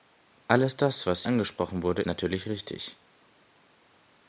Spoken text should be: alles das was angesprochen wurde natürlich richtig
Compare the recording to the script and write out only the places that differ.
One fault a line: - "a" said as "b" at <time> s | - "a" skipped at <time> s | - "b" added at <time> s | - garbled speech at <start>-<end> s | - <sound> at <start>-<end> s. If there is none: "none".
none